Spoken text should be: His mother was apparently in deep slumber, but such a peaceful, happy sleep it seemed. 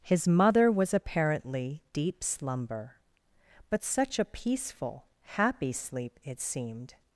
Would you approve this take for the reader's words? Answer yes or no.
no